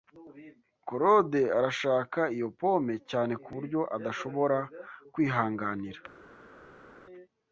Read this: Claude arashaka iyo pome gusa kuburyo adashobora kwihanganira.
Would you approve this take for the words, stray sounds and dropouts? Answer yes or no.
no